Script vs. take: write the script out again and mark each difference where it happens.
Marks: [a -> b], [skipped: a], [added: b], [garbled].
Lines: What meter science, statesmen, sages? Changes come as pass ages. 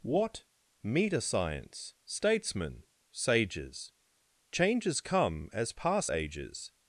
What meter science, statesmen, sages? Changes come as pass ages.